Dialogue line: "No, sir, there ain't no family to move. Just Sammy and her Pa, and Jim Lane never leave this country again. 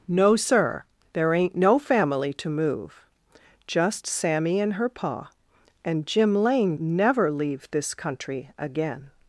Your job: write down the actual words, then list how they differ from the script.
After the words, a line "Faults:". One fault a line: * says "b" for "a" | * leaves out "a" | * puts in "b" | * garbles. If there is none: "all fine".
"No, sir, there ain't no family to move. Just Sammy and her Pa, and Jim Lane never leave this country again.
Faults:
all fine